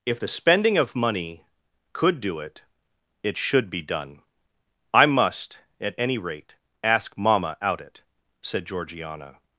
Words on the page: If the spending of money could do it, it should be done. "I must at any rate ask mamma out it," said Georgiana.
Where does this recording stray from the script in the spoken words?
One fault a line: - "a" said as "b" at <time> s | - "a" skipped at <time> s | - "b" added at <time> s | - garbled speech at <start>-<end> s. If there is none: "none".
none